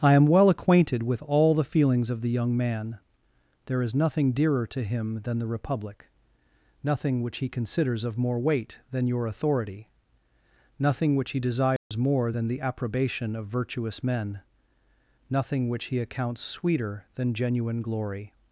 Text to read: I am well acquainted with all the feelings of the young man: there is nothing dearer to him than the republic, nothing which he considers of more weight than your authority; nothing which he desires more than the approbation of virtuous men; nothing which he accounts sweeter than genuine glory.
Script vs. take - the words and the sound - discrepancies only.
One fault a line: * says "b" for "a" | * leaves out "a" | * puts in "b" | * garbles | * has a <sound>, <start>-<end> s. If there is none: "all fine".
* has a dropout, 11.8-11.9 s